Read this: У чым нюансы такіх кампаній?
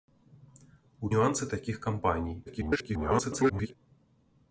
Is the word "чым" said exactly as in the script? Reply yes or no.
no